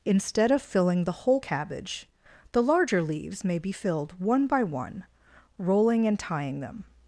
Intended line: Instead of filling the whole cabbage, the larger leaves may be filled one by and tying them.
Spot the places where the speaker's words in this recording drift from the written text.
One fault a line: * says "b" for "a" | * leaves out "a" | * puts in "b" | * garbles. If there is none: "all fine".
* puts in "one rolling"